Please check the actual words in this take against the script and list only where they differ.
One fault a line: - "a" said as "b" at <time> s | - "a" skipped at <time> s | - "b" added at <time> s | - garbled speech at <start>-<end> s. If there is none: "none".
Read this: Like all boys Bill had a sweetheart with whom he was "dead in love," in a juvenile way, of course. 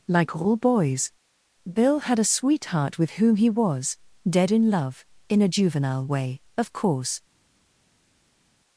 none